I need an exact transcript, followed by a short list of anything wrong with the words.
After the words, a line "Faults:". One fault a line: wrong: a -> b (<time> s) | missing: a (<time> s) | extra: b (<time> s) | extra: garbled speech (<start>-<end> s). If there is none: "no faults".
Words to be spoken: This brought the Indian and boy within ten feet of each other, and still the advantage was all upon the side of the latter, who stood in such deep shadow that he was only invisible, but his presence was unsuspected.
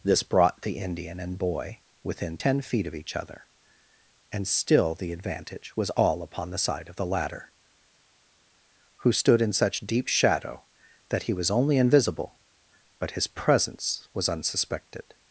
This brought the Indian and boy within ten feet of each other, and still the advantage was all upon the side of the latter, who stood in such deep shadow that he was only invisible, but his presence was unsuspected.
Faults:
no faults